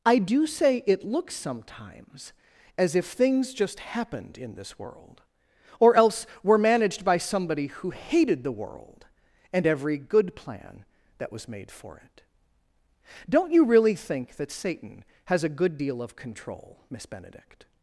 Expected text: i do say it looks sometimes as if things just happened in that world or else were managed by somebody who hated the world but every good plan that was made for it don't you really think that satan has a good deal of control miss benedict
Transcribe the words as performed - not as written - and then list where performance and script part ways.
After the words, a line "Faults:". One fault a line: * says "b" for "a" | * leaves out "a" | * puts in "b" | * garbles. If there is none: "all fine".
i do say it looks sometimes as if things just happened in this world or else were managed by somebody who hated the world and every good plan that was made for it don't you really think that satan has a good deal of control miss benedict
Faults:
* says "this" for "that"
* says "and" for "but"